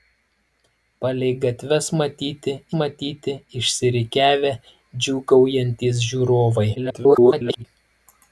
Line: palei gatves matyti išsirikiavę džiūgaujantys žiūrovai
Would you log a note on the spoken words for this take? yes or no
yes